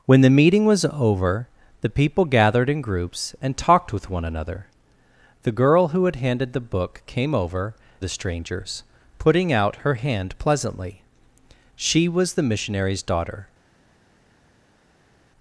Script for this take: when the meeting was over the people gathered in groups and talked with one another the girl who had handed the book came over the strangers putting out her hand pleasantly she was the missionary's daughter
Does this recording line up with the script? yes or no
yes